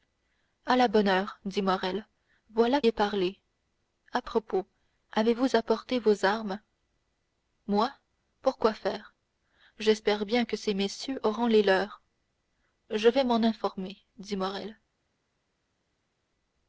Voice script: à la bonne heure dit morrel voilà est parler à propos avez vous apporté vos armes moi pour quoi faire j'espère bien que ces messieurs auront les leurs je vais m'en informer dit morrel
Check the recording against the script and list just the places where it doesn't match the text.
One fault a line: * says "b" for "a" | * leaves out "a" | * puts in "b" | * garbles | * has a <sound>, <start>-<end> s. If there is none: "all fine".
all fine